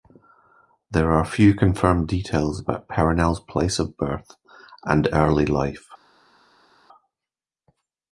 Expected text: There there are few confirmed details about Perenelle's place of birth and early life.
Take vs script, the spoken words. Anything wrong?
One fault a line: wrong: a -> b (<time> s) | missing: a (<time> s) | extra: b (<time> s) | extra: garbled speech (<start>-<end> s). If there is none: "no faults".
missing: there (1.1 s)